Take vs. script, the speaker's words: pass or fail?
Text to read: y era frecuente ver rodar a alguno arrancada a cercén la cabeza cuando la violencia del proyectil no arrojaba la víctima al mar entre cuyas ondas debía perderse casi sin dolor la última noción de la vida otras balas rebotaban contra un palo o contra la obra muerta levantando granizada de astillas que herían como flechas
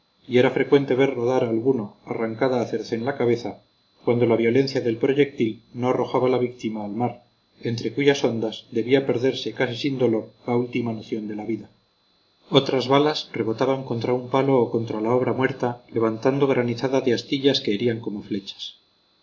pass